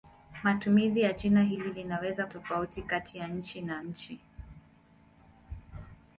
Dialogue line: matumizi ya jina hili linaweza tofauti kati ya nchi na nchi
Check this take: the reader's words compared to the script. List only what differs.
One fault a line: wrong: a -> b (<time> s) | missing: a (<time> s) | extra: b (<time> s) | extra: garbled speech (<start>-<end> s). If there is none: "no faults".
no faults